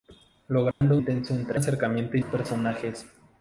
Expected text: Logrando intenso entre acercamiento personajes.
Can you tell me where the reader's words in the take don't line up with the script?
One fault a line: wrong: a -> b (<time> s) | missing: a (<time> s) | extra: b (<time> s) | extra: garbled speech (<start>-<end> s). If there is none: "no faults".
no faults